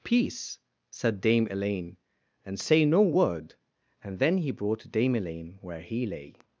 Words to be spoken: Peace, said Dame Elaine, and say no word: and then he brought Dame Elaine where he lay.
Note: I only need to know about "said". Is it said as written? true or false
true